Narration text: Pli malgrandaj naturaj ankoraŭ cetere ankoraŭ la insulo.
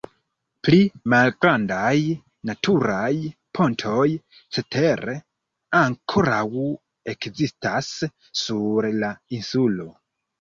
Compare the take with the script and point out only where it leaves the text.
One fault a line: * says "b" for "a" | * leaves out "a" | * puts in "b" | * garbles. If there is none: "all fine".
* says "pontoj" for "ankoraŭ"
* puts in "ekzistas sur"